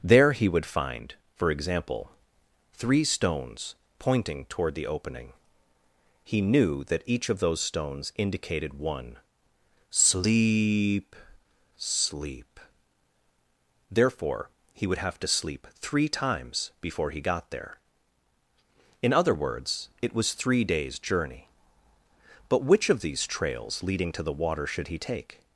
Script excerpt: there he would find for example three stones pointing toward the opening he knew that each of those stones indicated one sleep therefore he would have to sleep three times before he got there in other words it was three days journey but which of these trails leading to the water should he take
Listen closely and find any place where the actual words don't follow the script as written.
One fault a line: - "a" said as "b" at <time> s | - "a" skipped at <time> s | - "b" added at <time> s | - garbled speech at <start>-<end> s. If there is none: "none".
- "sleep" added at 11.8 s